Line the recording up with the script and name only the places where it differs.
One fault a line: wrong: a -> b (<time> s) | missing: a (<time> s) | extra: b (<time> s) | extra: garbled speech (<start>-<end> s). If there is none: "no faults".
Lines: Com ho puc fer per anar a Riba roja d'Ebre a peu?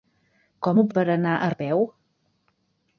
missing: puc fer (0.8 s)
missing: Riba roja d'Ebre (1.5 s)